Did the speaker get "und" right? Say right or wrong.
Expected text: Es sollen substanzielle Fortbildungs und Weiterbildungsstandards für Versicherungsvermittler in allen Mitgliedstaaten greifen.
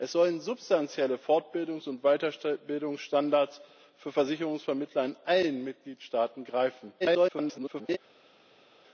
right